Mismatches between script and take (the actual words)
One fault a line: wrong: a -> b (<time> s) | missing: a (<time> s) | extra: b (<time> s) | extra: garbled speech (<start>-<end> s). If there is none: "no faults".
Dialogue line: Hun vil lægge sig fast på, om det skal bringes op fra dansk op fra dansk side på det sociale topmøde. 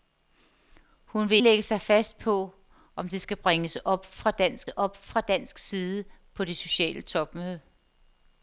no faults